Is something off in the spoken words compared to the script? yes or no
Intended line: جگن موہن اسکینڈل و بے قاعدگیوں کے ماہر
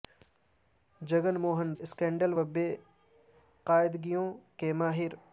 no